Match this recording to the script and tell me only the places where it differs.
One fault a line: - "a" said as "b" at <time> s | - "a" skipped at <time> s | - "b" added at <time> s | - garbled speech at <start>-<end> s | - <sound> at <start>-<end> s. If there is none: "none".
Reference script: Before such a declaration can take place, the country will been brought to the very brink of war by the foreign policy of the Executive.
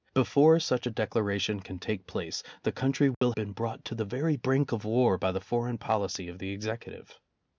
- dropout at 3.1-3.2 s